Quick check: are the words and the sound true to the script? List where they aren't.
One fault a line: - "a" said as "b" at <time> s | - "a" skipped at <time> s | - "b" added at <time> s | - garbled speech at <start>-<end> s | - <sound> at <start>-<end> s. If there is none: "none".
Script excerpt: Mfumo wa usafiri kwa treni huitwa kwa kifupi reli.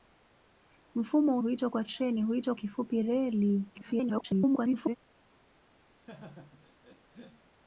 - "usafiri" said as "huitwa" at 1.4 s
- "kwa" skipped at 2.5 s
- garbled speech at 3.7-5.0 s
- laugh at 6.0-7.5 s